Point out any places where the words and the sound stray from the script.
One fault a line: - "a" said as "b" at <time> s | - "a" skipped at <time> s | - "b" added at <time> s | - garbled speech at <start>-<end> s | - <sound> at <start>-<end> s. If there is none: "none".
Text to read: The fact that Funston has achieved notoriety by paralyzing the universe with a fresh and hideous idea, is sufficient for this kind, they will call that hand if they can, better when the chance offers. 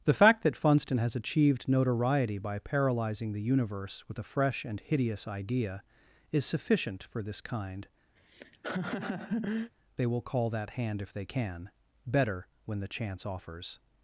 - laugh at 8.2-9.7 s